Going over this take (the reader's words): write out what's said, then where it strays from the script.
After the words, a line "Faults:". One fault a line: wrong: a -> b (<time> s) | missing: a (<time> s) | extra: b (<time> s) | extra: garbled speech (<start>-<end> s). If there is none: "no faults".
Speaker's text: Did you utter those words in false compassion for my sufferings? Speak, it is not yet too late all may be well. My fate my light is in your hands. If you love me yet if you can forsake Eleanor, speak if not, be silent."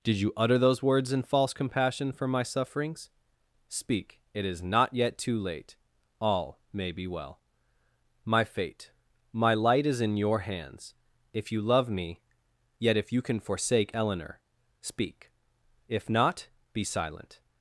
Did you utter those words in false compassion for my sufferings? Speak, it is not yet too late all may be well. My fate my light is in your hands. If you love me yet if you can forsake Eleanor, speak if not, be silent."
Faults:
no faults